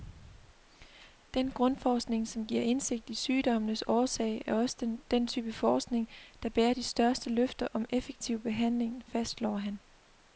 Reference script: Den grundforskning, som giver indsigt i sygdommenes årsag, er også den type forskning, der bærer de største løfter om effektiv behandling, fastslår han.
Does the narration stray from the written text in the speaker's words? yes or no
no